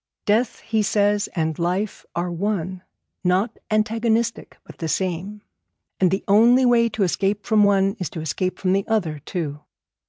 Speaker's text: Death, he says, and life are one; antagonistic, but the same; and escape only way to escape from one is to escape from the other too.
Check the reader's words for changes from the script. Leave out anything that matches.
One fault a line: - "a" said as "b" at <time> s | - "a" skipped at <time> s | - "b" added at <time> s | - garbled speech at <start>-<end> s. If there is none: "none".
- "not" added at 3.2 s
- "escape" said as "the" at 6.1 s